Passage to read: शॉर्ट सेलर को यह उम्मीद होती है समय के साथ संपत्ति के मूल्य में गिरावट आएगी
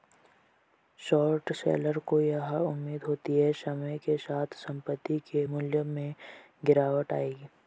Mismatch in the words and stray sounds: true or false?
false